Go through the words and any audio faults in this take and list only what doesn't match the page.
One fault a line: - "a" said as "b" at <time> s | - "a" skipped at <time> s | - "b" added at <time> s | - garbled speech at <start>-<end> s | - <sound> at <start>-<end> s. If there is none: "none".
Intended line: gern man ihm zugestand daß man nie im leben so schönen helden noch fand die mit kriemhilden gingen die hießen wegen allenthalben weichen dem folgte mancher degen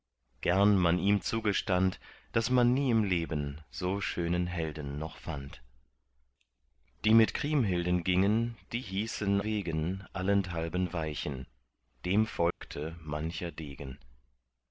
- dropout at 12.5-12.6 s